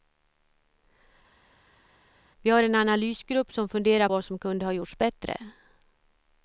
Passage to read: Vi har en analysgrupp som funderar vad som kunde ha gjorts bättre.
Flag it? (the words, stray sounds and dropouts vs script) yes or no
no